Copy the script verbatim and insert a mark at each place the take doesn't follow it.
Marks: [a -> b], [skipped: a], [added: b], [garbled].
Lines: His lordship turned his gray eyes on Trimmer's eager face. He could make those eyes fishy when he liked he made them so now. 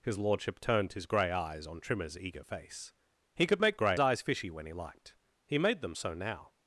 His lordship turned his gray eyes on Trimmer's eager face. He could make [those -> gray] eyes fishy when he liked he made them so now.